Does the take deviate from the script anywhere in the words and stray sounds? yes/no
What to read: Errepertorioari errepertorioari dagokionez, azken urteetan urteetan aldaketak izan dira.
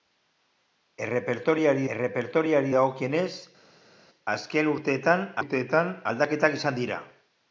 no